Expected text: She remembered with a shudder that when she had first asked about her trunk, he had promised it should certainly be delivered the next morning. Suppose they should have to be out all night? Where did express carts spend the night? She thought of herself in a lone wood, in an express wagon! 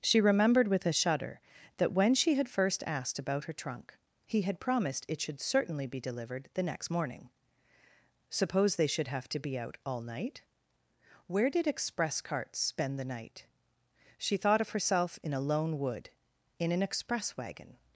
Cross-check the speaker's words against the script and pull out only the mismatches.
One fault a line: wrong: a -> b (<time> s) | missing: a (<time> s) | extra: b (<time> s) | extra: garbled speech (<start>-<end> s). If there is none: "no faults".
no faults